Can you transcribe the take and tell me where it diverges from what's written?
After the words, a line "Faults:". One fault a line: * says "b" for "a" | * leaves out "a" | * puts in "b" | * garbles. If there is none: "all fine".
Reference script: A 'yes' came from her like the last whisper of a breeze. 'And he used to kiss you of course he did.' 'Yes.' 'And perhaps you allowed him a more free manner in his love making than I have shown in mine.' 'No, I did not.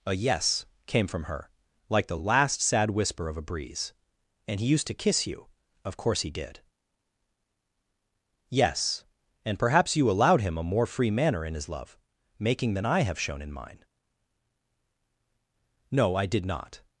A 'yes' came from her like the last sad whisper of a breeze. 'And he used to kiss you of course he did.' 'Yes.' 'And perhaps you allowed him a more free manner in his love making than I have shown in mine.' 'No, I did not.
Faults:
* puts in "sad"